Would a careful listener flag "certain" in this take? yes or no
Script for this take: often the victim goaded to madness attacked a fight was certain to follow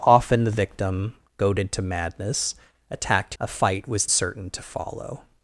no